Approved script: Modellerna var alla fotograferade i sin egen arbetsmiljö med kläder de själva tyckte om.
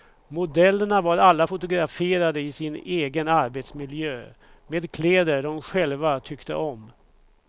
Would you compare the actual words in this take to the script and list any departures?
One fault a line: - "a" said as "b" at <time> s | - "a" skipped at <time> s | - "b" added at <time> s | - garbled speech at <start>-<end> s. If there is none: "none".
none